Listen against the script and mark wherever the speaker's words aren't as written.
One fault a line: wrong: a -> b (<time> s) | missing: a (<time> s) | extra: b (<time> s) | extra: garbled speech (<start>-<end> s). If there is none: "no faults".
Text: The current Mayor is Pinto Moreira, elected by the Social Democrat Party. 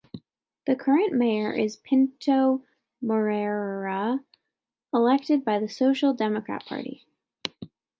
no faults